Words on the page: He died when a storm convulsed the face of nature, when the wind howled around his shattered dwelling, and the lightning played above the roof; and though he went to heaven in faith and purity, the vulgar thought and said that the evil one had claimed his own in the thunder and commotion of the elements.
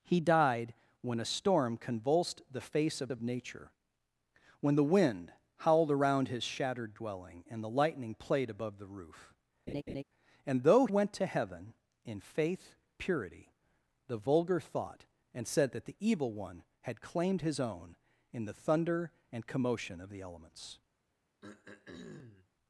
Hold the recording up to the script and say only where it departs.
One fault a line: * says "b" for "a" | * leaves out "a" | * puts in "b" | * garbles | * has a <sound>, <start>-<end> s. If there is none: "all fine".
* puts in "of"
* has a laugh, 9.7-10.0 s
* leaves out "he"
* leaves out "and"
* has a throat clearing, 21.4-22.5 s